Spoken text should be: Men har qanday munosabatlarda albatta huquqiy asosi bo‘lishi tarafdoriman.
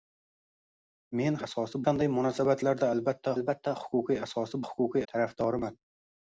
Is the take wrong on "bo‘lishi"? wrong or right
wrong